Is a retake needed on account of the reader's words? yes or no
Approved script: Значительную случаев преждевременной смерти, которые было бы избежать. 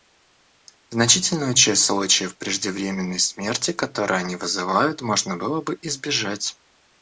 yes